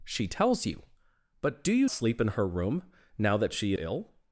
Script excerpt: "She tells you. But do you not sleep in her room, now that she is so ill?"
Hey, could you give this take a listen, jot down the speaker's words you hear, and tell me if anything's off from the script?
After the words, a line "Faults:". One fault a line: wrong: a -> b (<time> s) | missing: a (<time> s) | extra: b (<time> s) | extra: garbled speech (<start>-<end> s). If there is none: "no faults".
"She tells you. But do you sleep in her room, now that she ill?"
Faults:
missing: not (1.9 s)
missing: is so (3.7 s)